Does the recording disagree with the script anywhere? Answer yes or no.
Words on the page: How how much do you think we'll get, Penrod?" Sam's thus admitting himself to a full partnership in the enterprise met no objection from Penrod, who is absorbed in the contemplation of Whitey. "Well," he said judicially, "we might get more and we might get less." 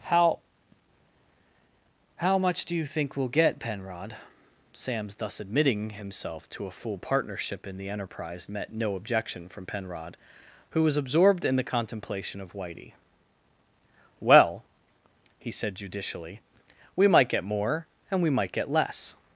yes